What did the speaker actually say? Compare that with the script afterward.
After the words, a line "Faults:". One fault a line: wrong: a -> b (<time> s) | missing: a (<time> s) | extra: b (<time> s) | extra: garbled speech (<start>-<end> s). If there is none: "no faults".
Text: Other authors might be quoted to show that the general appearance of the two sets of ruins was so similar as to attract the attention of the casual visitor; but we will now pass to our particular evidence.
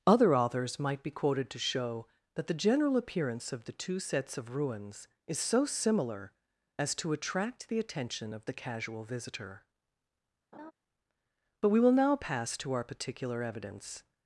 Other authors might be quoted to show that the general appearance of the two sets of ruins is so similar as to attract the attention of the casual visitor; but we will now pass to our particular evidence.
Faults:
wrong: was -> is (5.3 s)